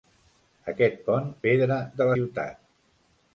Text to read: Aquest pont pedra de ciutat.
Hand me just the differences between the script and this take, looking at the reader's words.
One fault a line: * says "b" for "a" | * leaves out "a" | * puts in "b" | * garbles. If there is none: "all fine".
all fine